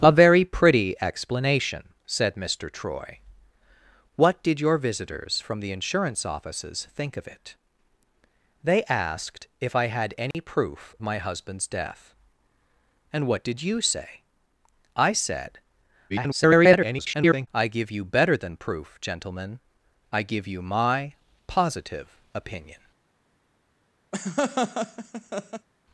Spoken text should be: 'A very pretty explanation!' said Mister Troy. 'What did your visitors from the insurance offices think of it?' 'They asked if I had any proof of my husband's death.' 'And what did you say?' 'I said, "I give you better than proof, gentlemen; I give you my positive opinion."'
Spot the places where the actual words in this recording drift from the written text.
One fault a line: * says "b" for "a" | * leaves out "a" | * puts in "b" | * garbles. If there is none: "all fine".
* leaves out "of"
* garbles